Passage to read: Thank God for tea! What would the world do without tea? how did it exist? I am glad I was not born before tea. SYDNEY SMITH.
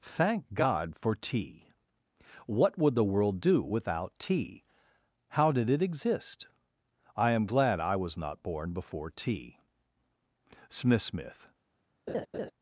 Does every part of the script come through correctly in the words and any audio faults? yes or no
no